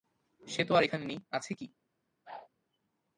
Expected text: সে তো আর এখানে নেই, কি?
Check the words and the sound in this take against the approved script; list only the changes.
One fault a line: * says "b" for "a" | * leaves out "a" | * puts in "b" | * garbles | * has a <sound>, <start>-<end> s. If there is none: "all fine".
* puts in "আছে"
* has a whoosh, 2.3-2.5 s